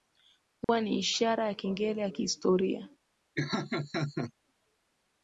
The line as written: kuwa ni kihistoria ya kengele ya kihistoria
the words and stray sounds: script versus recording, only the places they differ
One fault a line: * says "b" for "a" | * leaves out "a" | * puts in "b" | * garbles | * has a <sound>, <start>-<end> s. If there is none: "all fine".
* has a dropout, 0.6-0.7 s
* says "ishara" for "kihistoria"
* has a laugh, 3.4-4.3 s